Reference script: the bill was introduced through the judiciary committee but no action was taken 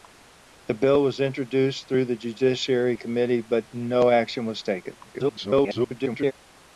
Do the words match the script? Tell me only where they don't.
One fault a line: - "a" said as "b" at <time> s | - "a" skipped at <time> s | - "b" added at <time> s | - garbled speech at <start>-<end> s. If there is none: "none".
- garbled speech at 5.0-6.3 s